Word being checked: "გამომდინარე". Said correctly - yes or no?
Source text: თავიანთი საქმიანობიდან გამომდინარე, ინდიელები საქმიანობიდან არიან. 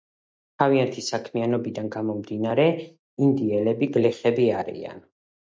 yes